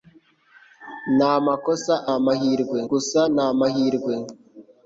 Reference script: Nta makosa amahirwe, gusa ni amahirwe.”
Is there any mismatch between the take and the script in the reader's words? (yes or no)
no